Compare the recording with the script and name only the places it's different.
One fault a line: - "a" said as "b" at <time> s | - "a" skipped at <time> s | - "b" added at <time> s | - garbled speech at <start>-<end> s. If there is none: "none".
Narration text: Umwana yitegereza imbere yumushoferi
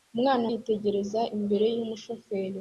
none